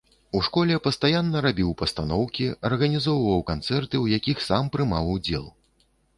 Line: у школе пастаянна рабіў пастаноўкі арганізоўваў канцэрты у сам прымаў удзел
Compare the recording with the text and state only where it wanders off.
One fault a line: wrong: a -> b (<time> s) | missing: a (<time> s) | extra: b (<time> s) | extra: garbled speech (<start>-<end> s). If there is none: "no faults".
extra: якіх (4.2 s)